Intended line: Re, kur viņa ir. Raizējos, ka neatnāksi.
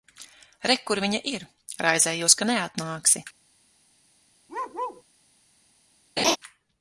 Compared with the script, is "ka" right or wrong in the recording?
right